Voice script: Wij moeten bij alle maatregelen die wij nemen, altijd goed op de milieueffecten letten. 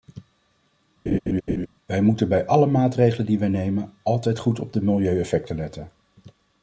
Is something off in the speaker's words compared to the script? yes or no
no